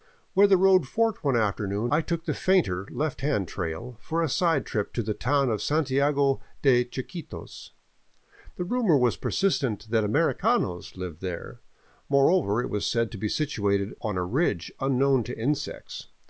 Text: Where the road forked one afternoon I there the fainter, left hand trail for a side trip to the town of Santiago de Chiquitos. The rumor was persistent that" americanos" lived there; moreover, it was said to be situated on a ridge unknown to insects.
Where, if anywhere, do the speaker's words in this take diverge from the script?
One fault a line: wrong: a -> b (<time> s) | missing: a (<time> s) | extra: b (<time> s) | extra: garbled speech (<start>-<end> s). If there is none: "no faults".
wrong: there -> took (2.0 s)